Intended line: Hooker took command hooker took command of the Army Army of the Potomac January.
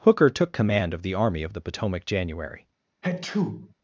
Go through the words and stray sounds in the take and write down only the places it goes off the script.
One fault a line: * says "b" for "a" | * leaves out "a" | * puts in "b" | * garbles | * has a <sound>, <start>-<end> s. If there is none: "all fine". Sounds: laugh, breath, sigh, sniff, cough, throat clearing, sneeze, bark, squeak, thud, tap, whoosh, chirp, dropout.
* leaves out "hooker took command"
* leaves out "Army"
* has a sneeze, 3.0-3.7 s